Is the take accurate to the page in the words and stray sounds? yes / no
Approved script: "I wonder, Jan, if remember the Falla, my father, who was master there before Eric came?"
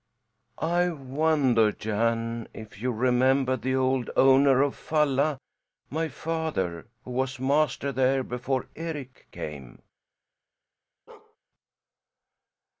no